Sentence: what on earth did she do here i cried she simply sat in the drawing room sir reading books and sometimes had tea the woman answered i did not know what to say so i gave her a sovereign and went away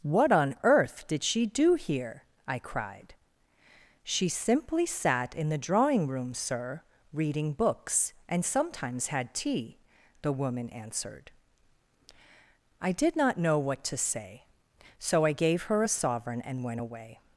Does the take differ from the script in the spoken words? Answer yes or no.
no